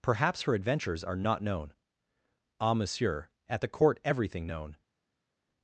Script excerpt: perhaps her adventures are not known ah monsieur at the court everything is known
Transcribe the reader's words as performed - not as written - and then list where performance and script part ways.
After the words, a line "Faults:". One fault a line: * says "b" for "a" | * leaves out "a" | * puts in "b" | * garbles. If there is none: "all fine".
perhaps her adventures are not known ah monsieur at the court everything known
Faults:
* leaves out "is"